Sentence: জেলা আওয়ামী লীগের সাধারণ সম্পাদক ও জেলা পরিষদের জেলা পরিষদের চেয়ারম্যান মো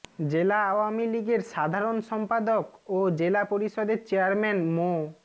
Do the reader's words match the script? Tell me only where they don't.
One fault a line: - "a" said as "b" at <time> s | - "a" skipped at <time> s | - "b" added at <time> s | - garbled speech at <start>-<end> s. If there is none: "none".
- "জেলা পরিষদের" skipped at 4.0 s